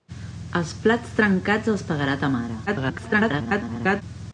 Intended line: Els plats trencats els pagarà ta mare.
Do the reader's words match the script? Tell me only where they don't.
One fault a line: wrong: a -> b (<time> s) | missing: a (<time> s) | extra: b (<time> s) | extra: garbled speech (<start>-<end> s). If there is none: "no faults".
extra: garbled speech (2.7-4.0 s)